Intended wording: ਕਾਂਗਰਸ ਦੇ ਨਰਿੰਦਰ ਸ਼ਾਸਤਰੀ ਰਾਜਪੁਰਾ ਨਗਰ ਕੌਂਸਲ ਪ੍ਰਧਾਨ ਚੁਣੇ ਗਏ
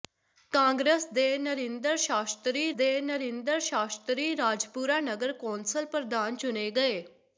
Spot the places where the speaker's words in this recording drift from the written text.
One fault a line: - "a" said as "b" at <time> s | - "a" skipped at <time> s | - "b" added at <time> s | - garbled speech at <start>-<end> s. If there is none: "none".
- "ਦੇ ਨਰਿੰਦਰ ਸ਼ਾਸਤਰੀ" added at 2.8 s